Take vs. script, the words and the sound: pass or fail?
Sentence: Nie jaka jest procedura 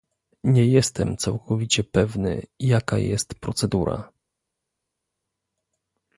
fail